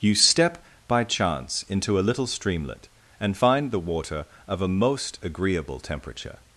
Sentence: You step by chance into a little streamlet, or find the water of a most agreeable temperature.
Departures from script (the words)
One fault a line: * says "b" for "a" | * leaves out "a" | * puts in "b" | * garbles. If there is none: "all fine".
* says "and" for "or"